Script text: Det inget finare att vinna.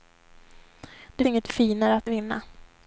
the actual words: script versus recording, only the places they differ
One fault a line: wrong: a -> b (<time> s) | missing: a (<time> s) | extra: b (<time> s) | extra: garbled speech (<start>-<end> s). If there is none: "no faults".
no faults